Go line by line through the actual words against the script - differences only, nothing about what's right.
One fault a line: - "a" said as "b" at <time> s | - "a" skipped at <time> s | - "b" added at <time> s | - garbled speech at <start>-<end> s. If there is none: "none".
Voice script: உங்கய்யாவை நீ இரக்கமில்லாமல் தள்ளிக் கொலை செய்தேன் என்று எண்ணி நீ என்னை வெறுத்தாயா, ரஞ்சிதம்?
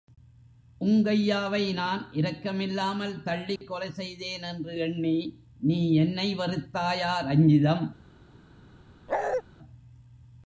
- "நீ" said as "நான்" at 1.7 s